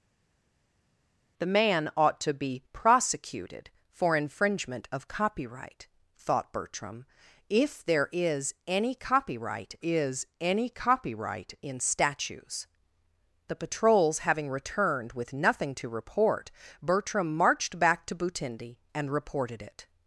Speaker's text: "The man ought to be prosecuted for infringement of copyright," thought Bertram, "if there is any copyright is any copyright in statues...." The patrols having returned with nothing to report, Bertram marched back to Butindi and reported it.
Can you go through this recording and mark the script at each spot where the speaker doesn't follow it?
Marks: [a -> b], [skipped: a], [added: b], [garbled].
"The man ought to be prosecuted for infringement of copyright," thought Bertram, "if there is any copyright is any copyright in statues...." The patrols having returned with nothing to report, Bertram marched back to Butindi and reported it.